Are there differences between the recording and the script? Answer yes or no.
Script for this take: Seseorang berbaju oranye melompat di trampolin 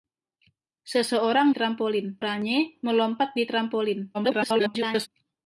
yes